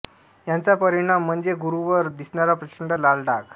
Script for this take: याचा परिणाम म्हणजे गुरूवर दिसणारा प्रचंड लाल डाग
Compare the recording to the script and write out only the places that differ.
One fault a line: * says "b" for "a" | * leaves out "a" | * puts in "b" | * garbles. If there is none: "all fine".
all fine